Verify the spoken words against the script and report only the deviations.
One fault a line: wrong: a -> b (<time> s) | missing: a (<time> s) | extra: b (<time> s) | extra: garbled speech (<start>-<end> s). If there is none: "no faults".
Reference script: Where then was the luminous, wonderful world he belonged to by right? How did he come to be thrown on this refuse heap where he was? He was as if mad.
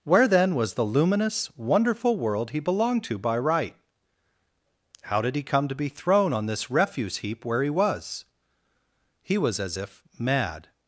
no faults